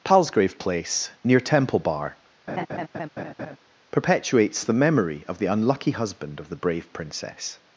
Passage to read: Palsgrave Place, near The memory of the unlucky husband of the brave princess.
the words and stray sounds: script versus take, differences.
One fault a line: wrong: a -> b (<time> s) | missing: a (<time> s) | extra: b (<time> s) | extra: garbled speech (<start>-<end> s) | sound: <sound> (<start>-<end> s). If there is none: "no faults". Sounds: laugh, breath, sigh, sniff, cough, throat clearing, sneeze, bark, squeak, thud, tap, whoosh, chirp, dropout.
extra: Temple Bar perpetuates (1.4 s)
sound: laugh (2.5-3.6 s)